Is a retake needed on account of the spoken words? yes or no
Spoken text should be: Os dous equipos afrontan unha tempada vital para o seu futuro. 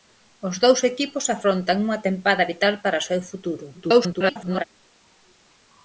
yes